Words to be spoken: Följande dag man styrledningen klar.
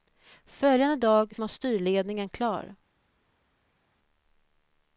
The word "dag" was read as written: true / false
true